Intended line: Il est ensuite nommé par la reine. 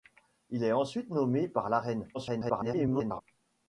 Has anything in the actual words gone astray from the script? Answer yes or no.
yes